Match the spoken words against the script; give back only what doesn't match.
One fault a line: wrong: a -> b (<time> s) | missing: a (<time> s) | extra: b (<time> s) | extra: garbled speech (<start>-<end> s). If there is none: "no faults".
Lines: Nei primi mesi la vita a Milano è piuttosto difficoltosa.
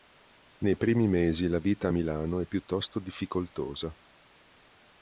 no faults